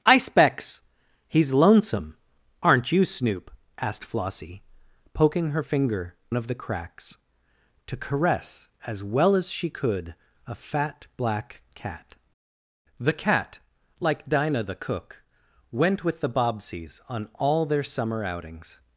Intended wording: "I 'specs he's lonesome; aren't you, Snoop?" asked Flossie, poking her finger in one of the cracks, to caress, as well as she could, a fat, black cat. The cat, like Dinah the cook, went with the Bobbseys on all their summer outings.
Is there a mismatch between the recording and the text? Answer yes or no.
yes